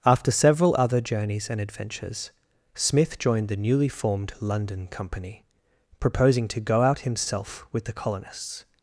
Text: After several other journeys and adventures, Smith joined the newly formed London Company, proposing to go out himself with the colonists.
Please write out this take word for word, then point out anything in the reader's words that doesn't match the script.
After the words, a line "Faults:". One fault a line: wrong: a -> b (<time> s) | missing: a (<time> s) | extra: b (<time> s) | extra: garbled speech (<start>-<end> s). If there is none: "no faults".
After several other journeys and adventures, Smith joined the newly formed London Company, proposing to go out himself with the colonists.
Faults:
no faults